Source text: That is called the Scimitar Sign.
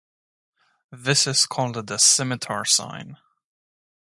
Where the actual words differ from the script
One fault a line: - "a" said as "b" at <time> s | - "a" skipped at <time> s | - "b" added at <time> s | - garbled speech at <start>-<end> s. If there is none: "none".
- "That" said as "This" at 0.9 s